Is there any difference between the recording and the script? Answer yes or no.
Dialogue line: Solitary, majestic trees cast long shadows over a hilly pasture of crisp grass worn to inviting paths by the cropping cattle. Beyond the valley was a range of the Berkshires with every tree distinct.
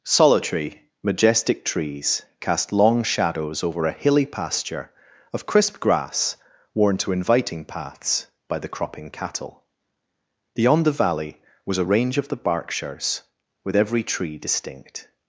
no